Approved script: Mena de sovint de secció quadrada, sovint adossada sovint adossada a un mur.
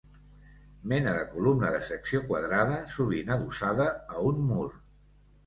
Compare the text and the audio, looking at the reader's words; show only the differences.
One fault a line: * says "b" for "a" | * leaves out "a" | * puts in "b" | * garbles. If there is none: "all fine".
* says "columna" for "sovint"
* leaves out "sovint adossada"